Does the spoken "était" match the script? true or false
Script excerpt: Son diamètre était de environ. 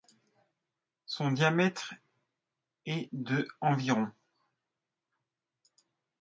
false